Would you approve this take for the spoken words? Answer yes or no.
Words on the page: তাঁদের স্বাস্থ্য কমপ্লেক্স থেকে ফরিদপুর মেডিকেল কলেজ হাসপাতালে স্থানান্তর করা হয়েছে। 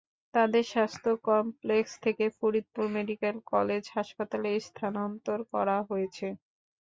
yes